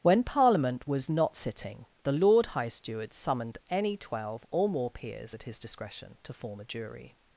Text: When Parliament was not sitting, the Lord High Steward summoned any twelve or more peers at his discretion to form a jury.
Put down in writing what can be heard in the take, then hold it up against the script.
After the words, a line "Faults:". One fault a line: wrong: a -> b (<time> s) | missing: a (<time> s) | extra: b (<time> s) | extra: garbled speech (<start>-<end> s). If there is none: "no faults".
When Parliament was not sitting, the Lord High Steward summoned any twelve or more peers at his discretion to form a jury.
Faults:
no faults